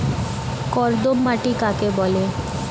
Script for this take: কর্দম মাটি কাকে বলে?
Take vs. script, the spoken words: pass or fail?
pass